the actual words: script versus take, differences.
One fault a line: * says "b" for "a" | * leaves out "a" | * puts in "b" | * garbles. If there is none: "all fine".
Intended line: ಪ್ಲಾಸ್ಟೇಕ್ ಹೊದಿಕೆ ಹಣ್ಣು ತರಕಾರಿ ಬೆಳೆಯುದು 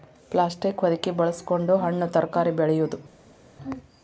* puts in "ಬಳಸಕೊಂಡ"